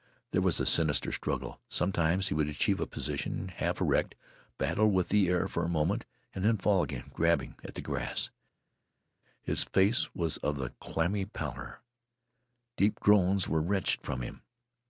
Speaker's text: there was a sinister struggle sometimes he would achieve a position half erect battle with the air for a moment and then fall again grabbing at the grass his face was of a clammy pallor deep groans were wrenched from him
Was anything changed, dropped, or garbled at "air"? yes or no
no